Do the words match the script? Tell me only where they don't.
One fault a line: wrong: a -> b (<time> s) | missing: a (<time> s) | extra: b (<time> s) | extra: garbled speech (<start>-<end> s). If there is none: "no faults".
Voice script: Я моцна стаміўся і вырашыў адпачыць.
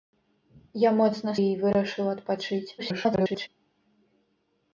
missing: стаміўся (1.3 s)
extra: garbled speech (2.8-3.5 s)